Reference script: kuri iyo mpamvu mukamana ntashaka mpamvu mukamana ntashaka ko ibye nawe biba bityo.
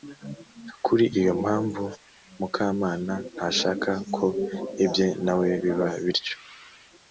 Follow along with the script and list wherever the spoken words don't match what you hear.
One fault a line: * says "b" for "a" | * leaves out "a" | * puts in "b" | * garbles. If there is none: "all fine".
* leaves out "mpamvu mukamana ntashaka"